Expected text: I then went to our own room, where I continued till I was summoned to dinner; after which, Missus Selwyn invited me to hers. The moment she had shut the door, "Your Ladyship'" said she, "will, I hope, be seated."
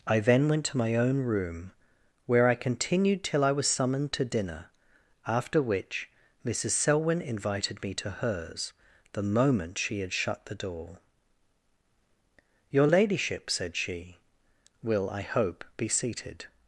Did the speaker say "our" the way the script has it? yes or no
no